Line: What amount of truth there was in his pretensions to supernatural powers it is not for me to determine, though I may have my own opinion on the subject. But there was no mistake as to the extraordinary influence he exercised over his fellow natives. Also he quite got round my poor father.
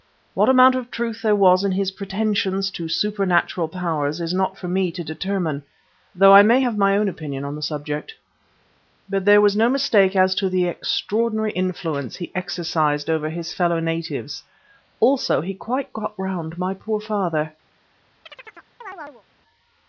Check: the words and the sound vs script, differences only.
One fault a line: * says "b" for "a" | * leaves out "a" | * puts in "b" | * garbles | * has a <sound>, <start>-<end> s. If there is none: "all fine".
* has a chirp, 18.3-19.2 s